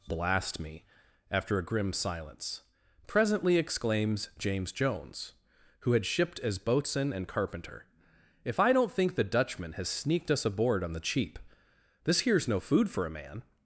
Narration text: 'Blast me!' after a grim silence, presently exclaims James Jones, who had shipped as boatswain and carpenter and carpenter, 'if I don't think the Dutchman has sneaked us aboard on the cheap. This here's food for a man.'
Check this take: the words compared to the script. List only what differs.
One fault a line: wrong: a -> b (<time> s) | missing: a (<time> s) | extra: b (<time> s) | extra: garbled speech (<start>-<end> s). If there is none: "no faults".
missing: and carpenter (7.8 s)
extra: no (12.5 s)